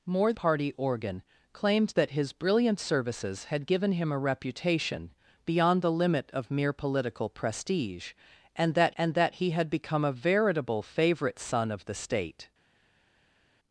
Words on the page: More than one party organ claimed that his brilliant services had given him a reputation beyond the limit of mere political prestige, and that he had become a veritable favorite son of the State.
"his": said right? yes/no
yes